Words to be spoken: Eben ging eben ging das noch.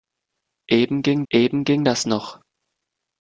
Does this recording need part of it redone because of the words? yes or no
no